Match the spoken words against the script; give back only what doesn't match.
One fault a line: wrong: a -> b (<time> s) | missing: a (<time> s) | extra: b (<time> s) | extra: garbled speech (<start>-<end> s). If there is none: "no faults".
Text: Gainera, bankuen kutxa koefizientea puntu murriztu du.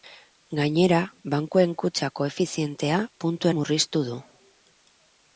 no faults